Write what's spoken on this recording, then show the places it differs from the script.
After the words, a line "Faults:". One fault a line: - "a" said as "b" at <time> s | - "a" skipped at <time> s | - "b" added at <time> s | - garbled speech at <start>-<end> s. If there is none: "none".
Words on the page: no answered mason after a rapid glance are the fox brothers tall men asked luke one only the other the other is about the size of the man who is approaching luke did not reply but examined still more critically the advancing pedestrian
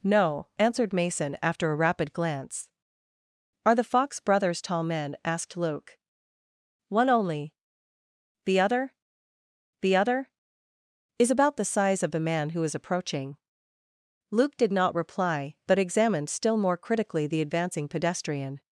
no answered mason after a rapid glance are the fox brothers tall men asked luke one only the other the other is about the size of the man who is approaching luke did not reply but examined still more critically the advancing pedestrian
Faults:
none